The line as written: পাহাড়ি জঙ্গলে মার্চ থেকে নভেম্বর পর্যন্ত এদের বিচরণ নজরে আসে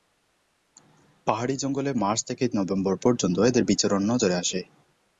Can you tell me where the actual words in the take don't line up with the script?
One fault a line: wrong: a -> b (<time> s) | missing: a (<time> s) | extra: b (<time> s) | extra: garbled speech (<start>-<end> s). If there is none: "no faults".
no faults